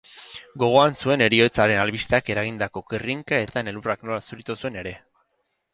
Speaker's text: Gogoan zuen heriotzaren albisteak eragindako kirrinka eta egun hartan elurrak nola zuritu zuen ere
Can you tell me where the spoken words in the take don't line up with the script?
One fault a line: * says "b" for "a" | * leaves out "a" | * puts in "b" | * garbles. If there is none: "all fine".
* leaves out "eta egun"